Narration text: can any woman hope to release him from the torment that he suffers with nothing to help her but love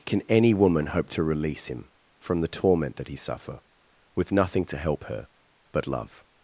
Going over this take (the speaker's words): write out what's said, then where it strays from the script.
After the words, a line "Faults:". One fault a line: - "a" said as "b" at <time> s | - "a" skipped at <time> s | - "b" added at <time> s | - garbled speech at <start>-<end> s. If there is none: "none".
can any woman hope to release him from the torment that he suffer with nothing to help her but love
Faults:
- "suffers" said as "suffer" at 3.2 s